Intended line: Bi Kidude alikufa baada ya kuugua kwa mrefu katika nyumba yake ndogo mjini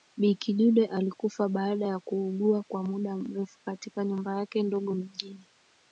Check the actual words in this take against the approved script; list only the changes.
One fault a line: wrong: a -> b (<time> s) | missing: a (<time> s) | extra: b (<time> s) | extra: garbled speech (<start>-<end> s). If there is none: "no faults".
extra: muda (2.8 s)